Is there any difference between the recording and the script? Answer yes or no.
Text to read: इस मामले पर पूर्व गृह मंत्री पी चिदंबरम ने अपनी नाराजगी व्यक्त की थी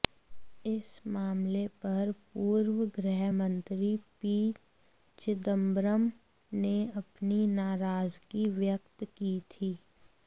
no